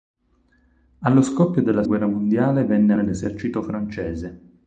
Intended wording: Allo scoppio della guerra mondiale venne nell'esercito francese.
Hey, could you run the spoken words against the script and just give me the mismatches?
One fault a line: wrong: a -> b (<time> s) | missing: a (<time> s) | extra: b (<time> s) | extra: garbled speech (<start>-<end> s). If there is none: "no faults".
no faults